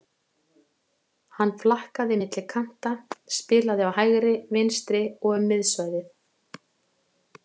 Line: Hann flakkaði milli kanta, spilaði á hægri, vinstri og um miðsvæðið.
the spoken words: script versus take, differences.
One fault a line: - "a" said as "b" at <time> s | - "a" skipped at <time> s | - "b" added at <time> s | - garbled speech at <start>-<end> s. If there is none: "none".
none